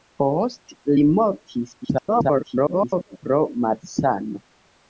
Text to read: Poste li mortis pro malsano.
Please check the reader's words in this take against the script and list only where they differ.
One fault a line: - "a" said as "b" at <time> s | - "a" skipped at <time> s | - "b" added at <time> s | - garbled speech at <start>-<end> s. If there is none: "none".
- garbled speech at 1.8-3.2 s